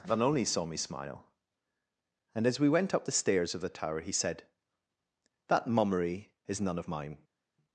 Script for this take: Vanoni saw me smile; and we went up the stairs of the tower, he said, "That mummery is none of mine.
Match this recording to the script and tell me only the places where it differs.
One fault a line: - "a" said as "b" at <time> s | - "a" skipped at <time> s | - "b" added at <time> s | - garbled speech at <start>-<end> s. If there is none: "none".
- "as" added at 2.5 s